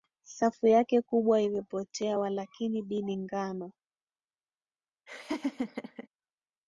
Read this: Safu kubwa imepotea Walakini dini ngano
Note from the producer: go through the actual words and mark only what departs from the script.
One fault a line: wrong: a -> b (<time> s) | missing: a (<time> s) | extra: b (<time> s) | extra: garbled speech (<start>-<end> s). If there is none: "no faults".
extra: yake (0.7 s)